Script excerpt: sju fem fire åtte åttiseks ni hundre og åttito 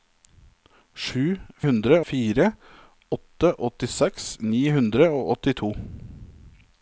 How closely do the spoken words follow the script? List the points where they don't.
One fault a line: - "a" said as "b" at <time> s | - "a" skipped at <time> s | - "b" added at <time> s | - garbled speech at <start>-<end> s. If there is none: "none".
- "fem" said as "hundre" at 1.7 s